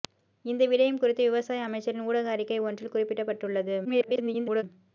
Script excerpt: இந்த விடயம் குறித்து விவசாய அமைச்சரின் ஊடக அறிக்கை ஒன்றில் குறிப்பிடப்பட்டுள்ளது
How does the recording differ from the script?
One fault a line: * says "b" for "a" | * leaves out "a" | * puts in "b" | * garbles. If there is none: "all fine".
* garbles